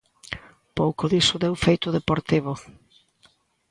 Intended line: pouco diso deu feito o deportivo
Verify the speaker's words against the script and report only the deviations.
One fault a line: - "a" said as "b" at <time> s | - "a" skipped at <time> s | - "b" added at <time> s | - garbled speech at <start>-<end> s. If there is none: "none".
none